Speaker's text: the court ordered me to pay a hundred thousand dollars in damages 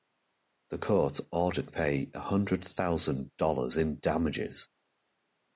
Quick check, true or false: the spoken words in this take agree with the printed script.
false